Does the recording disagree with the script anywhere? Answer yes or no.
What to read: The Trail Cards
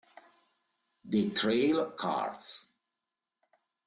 no